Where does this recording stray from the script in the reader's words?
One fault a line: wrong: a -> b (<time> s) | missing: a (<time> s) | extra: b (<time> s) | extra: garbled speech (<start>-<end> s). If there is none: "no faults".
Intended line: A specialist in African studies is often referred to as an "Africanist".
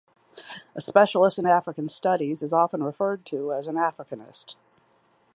no faults